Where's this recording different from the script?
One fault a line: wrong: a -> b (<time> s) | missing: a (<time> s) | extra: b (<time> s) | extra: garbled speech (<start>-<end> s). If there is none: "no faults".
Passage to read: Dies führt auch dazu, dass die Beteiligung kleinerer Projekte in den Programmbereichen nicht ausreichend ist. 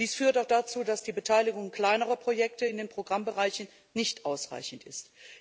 no faults